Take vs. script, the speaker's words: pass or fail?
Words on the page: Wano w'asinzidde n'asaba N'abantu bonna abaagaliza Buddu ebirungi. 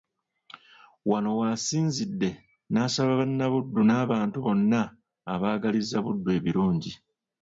fail